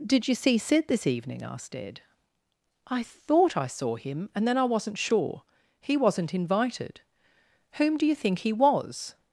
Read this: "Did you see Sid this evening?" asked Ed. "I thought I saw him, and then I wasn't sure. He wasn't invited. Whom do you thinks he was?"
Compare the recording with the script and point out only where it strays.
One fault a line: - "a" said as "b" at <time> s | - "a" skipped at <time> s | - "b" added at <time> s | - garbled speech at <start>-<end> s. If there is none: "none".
- "thinks" said as "think" at 8.1 s